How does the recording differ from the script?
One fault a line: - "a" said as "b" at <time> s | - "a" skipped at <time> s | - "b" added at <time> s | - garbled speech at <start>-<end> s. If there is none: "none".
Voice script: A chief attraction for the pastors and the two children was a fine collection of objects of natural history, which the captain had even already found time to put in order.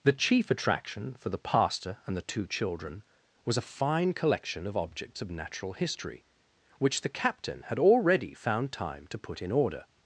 - "A" said as "The" at 0.0 s
- "pastors" said as "pastor" at 1.4 s
- "even" skipped at 7.8 s